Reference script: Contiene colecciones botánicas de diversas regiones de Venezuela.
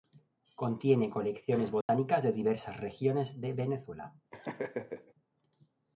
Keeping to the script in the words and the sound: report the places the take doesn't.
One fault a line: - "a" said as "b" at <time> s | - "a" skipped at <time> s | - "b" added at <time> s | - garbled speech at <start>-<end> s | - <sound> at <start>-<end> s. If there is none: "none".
- dropout at 1.8-1.9 s
- laugh at 4.3-5.1 s